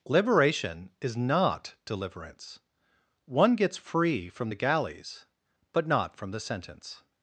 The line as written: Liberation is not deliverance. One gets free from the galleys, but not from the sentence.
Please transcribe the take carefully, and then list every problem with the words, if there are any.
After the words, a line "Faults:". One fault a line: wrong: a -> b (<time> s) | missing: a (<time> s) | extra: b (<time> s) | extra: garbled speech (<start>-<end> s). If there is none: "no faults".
Liberation is not deliverance. One gets free from the galleys, but not from the sentence.
Faults:
no faults